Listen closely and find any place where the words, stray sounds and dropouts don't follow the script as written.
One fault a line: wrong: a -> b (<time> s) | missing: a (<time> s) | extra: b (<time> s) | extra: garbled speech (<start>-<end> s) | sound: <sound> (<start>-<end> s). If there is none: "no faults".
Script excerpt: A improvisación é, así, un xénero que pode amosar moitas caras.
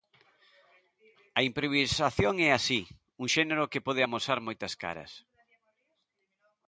no faults